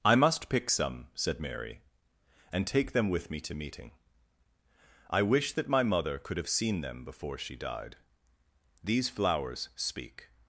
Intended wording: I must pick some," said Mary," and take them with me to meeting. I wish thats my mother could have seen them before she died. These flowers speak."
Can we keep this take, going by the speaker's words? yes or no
no